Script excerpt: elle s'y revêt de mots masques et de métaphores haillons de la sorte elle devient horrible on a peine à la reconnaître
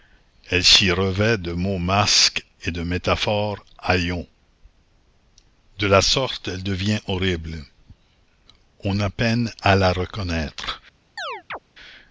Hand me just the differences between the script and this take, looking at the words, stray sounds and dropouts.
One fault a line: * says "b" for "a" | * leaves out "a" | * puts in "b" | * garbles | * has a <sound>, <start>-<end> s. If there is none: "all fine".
* has a chirp, 11.2-11.6 s